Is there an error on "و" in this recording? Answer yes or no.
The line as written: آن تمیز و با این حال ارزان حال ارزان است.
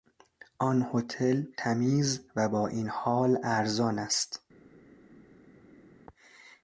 no